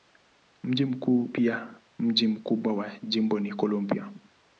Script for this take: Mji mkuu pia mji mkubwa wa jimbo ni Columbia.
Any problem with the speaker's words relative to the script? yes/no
no